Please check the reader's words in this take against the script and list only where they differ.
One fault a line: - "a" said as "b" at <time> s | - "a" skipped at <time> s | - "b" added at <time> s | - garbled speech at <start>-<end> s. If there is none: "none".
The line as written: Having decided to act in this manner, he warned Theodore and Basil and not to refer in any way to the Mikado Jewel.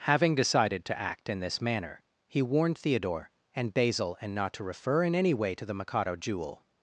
none